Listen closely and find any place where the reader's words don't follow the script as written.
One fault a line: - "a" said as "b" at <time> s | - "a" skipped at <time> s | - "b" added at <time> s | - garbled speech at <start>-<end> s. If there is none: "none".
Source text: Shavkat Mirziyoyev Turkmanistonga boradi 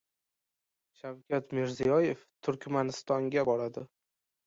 none